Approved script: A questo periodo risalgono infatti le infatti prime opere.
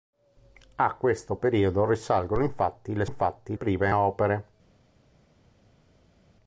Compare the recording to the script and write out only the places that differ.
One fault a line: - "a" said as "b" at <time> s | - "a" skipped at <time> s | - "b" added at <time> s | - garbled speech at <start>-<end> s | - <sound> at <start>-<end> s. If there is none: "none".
none